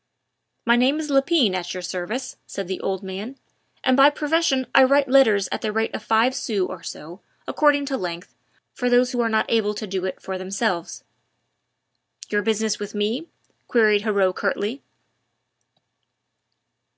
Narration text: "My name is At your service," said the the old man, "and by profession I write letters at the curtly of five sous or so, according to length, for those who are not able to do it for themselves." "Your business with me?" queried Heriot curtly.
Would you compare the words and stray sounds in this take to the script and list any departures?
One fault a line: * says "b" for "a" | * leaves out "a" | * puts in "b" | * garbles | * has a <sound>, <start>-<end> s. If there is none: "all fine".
* puts in "Lepine"
* leaves out "the"
* says "rate" for "curtly"